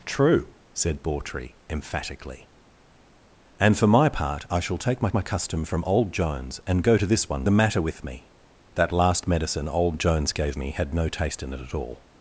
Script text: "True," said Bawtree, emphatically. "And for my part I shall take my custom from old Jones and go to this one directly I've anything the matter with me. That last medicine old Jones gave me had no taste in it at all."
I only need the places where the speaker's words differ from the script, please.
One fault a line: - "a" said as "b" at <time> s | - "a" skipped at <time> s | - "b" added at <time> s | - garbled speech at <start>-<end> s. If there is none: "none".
- "my" added at 5.1 s
- "directly I've anything" skipped at 7.5 s